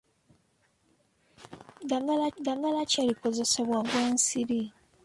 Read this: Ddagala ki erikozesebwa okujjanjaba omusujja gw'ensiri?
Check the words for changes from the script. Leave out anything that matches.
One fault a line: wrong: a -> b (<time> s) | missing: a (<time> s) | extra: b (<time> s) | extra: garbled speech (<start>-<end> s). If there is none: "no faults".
extra: ddagala (2.4 s)
missing: okujjanjaba omusujja (3.8 s)